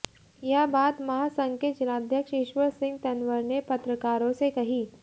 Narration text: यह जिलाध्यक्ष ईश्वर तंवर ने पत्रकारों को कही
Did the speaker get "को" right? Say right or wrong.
wrong